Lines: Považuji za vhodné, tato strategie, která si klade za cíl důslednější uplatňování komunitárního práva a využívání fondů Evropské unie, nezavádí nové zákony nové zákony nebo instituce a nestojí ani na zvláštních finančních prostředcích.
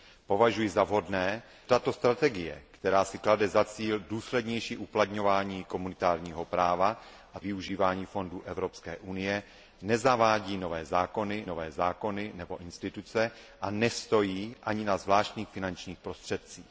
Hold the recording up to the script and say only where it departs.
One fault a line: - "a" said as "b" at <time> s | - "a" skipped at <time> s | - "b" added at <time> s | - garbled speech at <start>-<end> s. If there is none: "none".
none